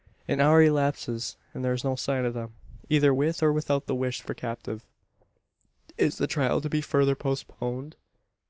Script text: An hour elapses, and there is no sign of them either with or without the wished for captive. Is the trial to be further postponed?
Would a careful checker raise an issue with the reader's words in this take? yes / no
no